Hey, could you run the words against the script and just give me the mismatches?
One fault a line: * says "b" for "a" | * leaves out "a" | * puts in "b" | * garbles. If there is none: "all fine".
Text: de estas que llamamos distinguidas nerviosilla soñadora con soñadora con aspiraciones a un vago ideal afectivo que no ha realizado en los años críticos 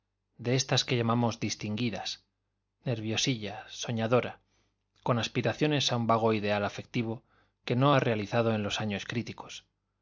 * leaves out "soñadora con"